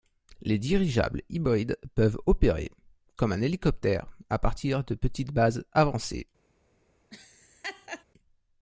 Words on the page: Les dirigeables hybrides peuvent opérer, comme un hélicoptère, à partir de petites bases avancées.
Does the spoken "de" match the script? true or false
true